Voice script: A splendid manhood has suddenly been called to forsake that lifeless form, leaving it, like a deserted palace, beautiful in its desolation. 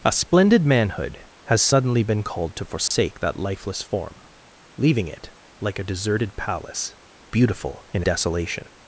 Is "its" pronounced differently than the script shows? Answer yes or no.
yes